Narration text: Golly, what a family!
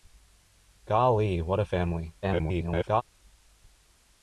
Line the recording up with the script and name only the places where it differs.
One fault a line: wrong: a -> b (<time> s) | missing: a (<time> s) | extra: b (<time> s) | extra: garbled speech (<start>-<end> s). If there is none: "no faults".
extra: garbled speech (2.2-3.0 s)